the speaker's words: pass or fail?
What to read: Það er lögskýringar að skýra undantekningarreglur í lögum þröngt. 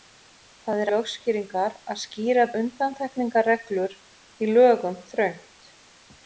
pass